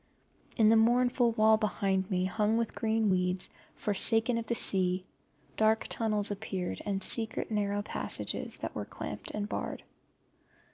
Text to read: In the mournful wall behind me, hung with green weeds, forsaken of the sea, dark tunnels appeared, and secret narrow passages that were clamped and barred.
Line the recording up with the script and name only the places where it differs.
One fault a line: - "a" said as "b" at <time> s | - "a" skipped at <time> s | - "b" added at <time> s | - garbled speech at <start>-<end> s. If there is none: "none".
none